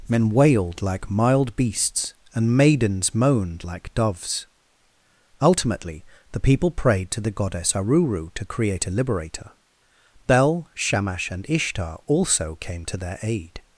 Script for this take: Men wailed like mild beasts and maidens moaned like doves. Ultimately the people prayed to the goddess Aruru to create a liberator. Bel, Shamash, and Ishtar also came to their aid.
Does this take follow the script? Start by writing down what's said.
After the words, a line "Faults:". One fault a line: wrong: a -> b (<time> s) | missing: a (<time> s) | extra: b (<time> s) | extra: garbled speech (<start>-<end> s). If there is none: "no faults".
Men wailed like mild beasts and maidens moaned like doves. Ultimately the people prayed to the goddess Aruru to create a liberator. Bel, Shamash, and Ishtar also came to their aid.
Faults:
no faults